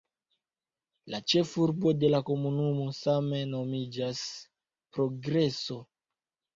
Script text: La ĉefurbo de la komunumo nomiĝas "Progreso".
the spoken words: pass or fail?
fail